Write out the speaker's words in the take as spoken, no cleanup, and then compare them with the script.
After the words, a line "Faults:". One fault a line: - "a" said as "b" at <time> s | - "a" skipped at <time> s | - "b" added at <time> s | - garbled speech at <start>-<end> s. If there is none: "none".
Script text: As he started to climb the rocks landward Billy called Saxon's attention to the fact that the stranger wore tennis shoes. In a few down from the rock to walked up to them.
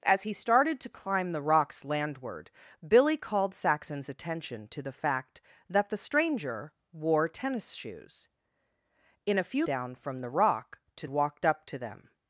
As he started to climb the rocks landward Billy called Saxon's attention to the fact that the stranger wore tennis shoes. In a few down from the rock to walked up to them.
Faults:
none